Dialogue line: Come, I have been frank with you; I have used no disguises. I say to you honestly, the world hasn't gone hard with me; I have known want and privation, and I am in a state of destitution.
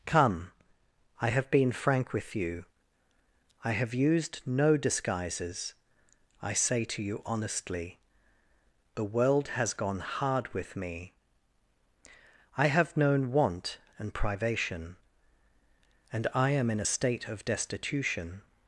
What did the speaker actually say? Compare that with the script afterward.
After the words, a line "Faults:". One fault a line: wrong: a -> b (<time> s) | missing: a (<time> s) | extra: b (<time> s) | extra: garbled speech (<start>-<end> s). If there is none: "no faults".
Come, I have been frank with you; I have used no disguises. I say to you honestly, the world has gone hard with me; I have known want and privation, and I am in a state of destitution.
Faults:
wrong: hasn't -> has (9.5 s)